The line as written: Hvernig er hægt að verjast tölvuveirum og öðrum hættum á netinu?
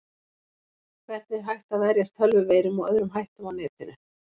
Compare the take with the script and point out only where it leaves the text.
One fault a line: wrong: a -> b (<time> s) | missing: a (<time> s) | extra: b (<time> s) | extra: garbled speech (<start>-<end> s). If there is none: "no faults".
no faults